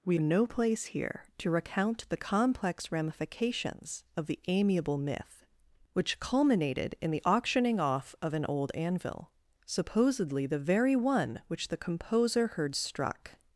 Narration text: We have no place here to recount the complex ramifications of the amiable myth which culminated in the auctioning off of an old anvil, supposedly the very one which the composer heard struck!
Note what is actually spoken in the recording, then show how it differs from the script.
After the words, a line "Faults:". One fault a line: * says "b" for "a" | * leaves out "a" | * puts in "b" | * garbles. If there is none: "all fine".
We no place here to recount the complex ramifications of the amiable myth which culminated in the auctioning off of an old anvil, supposedly the very one which the composer heard struck!
Faults:
* leaves out "have"